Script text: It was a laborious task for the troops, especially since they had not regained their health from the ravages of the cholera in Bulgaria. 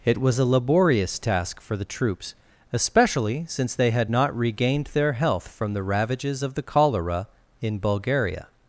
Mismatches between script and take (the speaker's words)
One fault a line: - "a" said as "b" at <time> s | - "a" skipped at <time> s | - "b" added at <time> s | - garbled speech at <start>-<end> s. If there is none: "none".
none